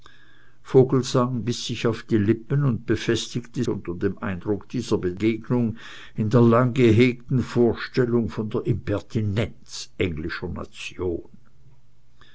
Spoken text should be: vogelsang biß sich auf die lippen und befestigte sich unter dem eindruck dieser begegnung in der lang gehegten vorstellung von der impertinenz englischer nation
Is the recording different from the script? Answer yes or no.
yes